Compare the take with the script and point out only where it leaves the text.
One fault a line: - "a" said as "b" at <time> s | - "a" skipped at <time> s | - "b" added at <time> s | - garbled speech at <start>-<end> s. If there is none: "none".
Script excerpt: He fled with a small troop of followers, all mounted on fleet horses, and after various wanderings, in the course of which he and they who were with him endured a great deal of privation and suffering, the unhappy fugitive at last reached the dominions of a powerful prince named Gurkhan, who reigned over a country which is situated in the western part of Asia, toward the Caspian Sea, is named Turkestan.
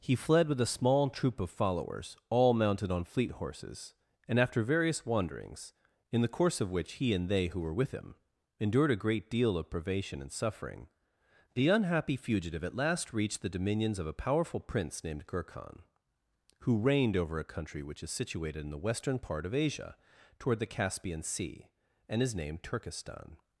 - "and" added at 22.1 s